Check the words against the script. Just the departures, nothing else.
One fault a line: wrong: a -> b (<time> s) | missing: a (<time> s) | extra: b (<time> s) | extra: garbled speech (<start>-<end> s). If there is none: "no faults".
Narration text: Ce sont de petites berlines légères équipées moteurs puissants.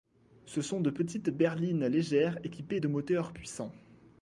extra: de (2.8 s)